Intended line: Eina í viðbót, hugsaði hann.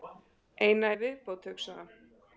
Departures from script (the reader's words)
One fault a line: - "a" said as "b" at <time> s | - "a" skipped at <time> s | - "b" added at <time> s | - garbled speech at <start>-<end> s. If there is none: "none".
none